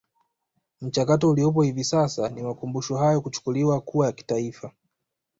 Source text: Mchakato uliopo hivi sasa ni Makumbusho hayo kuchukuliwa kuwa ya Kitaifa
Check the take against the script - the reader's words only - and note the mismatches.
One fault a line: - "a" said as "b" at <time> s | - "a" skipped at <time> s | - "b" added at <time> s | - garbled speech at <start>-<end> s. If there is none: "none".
none